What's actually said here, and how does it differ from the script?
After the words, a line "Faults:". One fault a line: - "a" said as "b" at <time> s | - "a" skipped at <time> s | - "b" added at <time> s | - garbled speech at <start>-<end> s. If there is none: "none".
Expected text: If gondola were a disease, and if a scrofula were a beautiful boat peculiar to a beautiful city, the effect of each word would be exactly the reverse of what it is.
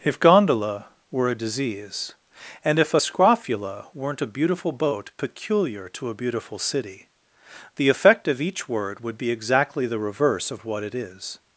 If gondola were a disease, and if a scrofula weren't a beautiful boat peculiar to a beautiful city, the effect of each word would be exactly the reverse of what it is.
Faults:
- "were" said as "weren't" at 3.9 s